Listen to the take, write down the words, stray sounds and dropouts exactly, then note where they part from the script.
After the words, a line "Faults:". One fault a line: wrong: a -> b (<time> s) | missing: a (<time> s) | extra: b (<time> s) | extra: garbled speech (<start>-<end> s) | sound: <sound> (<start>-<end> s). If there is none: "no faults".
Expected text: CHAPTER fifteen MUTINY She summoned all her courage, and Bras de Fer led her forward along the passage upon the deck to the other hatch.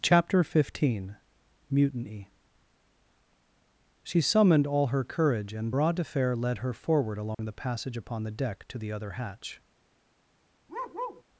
CHAPTER fifteen MUTINY She summoned all her courage, and Bras de Fer led her forward along the passage upon the deck to the other hatch.
Faults:
sound: dropout (7.3-7.4 s)
sound: bark (10.7-11.2 s)